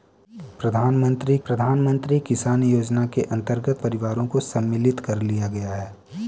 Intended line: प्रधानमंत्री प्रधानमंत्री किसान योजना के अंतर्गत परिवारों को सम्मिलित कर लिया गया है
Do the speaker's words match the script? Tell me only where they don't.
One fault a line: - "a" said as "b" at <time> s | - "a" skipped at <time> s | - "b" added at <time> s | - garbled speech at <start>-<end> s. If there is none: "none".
none